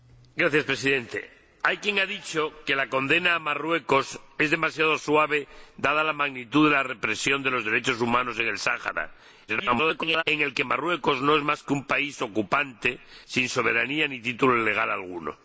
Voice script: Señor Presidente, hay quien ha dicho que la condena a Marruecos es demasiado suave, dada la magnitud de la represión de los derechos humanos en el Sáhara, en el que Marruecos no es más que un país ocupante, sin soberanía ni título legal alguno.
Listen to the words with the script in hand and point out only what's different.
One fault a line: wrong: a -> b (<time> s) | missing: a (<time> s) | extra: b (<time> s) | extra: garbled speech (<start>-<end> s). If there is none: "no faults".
extra: garbled speech (9.5-10.2 s)